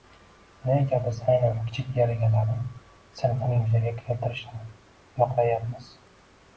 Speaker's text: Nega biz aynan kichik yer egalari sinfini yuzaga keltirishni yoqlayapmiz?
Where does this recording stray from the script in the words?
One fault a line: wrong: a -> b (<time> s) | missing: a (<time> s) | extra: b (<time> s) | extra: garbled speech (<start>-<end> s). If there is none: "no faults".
no faults